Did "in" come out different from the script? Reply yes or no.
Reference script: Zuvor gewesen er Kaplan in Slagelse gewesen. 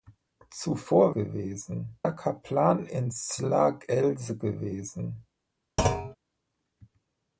no